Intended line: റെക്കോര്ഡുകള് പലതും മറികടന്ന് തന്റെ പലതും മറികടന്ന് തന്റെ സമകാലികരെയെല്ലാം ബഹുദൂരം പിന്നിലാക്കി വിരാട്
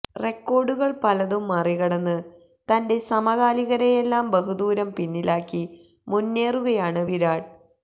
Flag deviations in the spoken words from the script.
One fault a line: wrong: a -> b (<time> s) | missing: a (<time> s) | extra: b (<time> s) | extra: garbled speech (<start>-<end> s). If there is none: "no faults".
missing: പലതും മറികടന്ന് തന്റെ (3.0 s)
extra: മുന്നേറുകയാണ് (6.1 s)